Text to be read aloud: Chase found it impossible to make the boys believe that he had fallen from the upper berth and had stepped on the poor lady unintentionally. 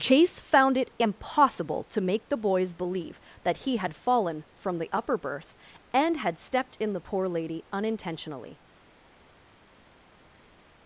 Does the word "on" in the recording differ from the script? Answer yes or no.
yes